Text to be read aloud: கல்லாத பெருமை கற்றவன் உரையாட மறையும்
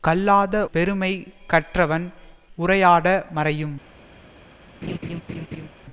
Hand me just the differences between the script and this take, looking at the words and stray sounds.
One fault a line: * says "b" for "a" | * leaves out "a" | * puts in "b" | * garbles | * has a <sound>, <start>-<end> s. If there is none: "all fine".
* has a laugh, 4.8-5.7 s